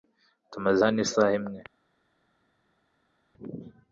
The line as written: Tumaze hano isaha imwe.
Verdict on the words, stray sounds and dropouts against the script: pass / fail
pass